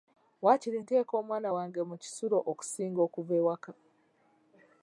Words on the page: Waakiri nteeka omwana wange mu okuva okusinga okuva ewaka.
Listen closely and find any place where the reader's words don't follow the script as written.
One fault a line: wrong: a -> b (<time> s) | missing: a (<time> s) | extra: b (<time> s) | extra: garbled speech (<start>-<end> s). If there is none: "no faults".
wrong: okuva -> kisulo (2.0 s)